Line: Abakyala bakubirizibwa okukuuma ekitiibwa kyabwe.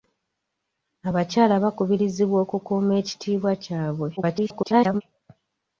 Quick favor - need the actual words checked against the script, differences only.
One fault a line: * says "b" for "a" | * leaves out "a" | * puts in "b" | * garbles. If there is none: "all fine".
* garbles